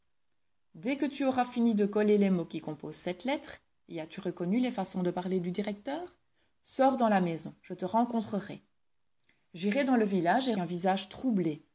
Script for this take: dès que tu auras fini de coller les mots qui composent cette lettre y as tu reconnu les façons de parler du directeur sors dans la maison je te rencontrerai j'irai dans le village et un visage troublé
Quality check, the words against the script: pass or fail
pass